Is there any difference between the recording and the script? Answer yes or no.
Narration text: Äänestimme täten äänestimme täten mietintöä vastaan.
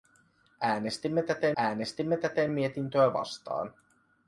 no